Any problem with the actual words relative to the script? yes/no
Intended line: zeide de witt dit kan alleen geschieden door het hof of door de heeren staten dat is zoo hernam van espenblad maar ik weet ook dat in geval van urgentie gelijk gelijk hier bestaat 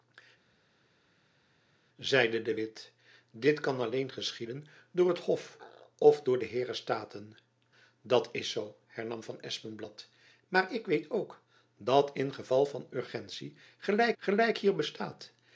no